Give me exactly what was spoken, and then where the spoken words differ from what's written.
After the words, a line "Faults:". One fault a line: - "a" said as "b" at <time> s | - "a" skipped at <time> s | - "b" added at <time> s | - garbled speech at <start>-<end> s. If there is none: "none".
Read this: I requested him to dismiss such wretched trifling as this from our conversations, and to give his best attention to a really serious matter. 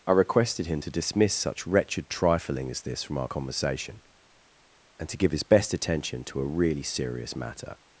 I requested him to dismiss such wretched trifling as this from our conversation, and to give his best attention to a really serious matter.
Faults:
- "conversations" said as "conversation" at 3.3 s